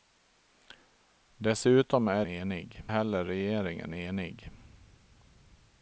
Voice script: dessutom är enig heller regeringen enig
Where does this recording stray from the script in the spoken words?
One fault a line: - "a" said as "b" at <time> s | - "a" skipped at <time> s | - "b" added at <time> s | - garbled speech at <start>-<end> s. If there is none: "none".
none